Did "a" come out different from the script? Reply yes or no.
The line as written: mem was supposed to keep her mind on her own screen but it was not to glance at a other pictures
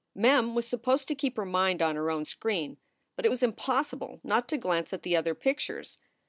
yes